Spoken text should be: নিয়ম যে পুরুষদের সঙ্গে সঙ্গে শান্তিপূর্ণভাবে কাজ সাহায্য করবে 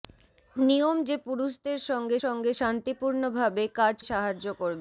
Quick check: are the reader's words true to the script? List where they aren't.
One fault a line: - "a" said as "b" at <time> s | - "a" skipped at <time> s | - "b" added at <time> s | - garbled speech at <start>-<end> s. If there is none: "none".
none